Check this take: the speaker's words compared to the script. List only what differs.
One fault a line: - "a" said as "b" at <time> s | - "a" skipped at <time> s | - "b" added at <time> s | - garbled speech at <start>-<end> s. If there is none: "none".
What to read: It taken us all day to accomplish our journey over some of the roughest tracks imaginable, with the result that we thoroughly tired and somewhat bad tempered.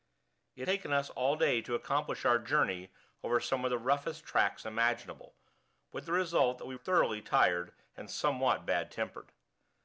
none